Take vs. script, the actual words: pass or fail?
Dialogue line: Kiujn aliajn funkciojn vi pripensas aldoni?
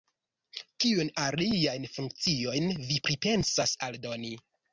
pass